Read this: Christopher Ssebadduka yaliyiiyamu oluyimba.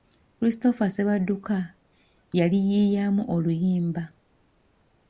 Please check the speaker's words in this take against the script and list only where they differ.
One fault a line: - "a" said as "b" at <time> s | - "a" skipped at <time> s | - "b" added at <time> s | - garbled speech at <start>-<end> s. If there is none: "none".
none